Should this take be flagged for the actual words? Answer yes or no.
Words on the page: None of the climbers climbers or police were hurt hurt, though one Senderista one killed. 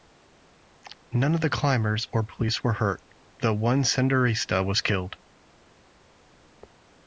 yes